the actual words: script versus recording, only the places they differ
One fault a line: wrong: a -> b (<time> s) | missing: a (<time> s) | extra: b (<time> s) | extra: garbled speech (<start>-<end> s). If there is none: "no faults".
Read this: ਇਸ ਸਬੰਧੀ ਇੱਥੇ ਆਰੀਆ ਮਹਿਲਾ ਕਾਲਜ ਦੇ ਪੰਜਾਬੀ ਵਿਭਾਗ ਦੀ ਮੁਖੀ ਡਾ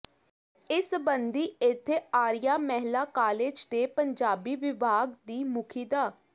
no faults